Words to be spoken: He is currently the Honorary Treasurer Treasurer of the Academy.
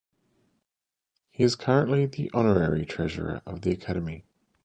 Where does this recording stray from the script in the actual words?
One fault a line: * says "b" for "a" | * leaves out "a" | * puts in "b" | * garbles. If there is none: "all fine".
* leaves out "Treasurer"